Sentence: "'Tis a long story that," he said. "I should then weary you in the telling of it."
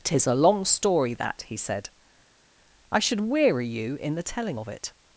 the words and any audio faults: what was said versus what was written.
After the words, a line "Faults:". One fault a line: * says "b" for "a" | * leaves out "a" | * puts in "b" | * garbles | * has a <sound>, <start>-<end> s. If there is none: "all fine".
"'Tis a long story that," he said. "I should weary you in the telling of it."
Faults:
* leaves out "then"